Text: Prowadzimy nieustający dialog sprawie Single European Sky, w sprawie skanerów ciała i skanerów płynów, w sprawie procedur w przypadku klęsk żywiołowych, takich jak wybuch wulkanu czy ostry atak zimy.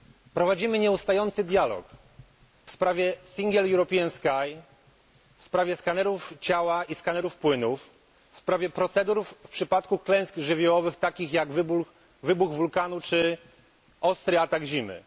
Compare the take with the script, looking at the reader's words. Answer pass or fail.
pass